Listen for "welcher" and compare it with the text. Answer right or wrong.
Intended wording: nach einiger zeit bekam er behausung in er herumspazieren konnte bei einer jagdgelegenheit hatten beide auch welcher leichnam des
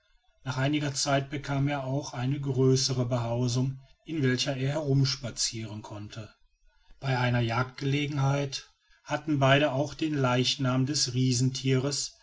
wrong